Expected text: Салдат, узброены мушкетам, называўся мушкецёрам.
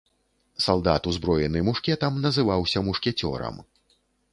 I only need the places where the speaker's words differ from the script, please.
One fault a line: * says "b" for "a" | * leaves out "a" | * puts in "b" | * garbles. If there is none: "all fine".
all fine